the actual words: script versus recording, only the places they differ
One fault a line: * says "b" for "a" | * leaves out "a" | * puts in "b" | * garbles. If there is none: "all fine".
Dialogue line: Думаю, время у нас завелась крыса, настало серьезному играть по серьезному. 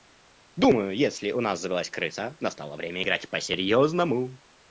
* says "если" for "время"
* says "время" for "серьезному"